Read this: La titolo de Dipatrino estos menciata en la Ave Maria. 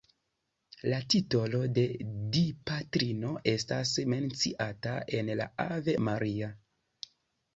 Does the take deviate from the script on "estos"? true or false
true